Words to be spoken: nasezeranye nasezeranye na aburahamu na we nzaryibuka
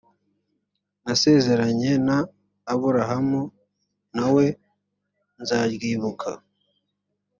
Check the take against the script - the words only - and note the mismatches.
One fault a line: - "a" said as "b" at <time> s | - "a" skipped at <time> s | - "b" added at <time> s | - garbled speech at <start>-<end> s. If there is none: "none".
- "nasezeranye" skipped at 1.9 s